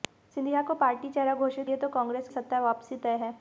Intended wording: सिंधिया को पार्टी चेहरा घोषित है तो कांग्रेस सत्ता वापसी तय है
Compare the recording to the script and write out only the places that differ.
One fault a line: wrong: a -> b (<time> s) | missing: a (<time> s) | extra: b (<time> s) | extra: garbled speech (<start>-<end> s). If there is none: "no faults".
no faults